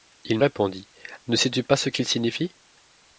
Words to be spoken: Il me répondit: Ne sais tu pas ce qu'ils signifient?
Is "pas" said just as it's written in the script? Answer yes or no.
yes